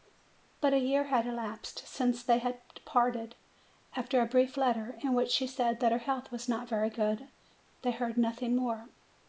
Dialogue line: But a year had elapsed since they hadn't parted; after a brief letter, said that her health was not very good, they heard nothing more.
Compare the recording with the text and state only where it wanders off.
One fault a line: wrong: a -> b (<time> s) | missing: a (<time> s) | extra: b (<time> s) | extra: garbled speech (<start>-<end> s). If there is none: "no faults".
wrong: hadn't -> had (2.4 s)
extra: in which she (5.0 s)